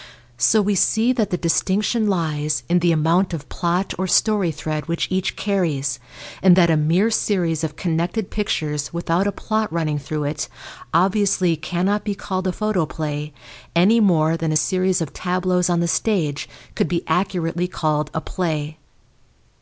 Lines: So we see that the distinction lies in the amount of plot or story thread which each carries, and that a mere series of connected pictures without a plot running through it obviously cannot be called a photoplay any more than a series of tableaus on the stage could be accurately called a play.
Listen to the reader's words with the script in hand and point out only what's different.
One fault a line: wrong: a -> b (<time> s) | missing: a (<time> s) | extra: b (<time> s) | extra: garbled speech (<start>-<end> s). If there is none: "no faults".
no faults